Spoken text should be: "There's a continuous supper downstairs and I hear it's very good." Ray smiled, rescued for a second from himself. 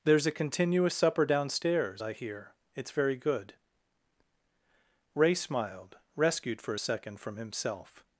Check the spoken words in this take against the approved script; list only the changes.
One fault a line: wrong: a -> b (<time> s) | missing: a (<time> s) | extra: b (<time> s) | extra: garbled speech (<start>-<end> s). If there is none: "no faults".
missing: and (2.0 s)